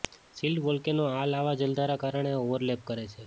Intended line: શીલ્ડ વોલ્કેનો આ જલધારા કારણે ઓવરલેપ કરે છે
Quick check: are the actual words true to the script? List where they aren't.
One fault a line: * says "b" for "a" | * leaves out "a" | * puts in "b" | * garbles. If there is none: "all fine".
* puts in "લાવા"